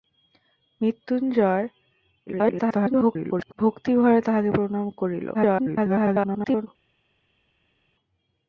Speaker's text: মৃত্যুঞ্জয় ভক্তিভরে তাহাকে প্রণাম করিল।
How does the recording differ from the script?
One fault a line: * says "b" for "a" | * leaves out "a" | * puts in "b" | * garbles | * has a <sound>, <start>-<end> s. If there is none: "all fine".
* garbles
* garbles